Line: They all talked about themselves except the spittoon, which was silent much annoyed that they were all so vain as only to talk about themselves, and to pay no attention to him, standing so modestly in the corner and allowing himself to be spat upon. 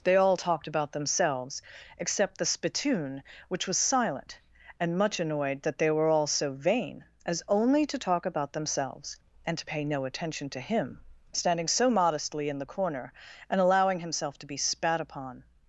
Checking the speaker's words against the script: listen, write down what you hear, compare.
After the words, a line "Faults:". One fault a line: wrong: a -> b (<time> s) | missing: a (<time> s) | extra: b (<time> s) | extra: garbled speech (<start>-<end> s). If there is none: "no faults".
They all talked about themselves except the spittoon, which was silent and much annoyed that they were all so vain as only to talk about themselves, and to pay no attention to him, standing so modestly in the corner and allowing himself to be spat upon.
Faults:
extra: and (4.8 s)